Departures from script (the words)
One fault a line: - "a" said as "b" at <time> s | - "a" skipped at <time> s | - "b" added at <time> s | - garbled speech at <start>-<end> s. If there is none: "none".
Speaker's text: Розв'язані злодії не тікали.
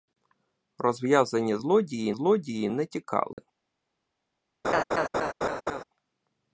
- "злодії" added at 2.1 s